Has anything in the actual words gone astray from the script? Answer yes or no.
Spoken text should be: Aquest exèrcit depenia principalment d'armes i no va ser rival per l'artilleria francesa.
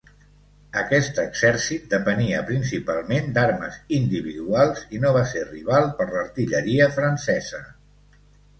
yes